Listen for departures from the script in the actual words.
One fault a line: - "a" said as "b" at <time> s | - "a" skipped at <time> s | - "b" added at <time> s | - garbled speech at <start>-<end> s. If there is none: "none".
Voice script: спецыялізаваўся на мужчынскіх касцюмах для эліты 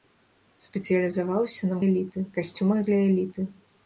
- "мужчынскіх" said as "эліты" at 1.9 s